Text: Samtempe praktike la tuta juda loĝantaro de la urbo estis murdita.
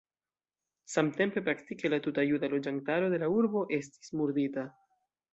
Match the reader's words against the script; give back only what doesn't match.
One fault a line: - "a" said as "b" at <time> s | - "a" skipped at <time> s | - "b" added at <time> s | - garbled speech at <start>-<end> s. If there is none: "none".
none